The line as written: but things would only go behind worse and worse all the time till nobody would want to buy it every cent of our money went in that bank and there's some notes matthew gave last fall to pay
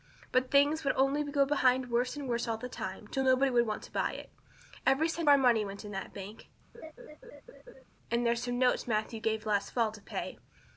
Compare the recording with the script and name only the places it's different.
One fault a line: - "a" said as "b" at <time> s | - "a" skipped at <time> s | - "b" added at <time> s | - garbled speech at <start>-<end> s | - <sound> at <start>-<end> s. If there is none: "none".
- "of" skipped at 5.3 s
- laugh at 6.7-7.8 s